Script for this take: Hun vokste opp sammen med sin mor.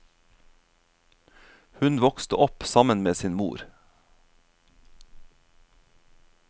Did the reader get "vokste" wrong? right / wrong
right